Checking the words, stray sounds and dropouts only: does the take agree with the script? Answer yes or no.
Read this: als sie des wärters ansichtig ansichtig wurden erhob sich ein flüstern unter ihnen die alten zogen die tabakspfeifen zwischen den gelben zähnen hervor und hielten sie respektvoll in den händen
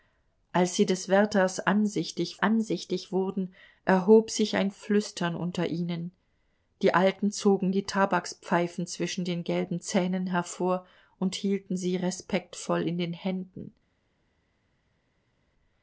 yes